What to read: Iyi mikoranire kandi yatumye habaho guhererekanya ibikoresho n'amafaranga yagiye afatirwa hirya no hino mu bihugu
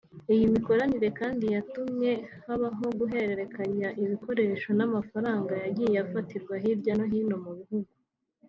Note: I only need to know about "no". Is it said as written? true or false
true